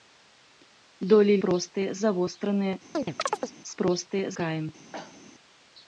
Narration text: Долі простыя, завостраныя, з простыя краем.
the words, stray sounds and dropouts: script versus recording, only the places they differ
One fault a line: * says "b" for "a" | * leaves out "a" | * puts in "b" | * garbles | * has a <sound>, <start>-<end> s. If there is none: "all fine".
* has a chirp, 2.9-3.5 s
* has a cough, 4.9-5.2 s